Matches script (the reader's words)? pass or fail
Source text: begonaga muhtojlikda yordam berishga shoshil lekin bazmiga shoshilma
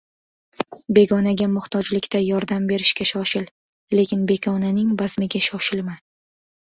fail